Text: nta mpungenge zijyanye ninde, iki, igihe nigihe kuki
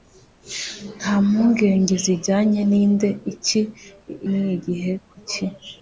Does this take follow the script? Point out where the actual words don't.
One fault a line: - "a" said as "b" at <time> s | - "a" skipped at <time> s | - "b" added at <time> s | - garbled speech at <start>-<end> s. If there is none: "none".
- "igihe" skipped at 3.6 s